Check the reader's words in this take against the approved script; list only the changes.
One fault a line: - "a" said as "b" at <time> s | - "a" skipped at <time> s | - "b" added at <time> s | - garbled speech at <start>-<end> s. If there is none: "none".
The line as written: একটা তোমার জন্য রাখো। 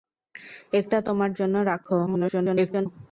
- garbled speech at 2.1-2.9 s